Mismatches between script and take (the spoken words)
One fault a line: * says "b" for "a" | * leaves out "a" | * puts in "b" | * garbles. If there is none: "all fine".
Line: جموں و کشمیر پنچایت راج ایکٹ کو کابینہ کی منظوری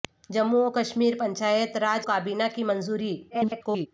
* leaves out "ایکٹ کو"
* garbles